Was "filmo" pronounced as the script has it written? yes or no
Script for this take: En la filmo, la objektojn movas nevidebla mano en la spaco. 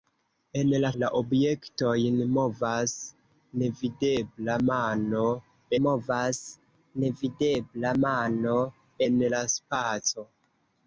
no